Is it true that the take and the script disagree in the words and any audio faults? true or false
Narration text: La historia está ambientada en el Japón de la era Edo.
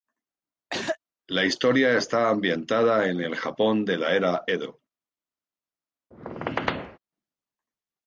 true